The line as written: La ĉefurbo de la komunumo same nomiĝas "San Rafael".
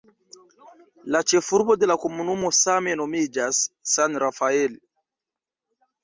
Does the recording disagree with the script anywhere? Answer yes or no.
no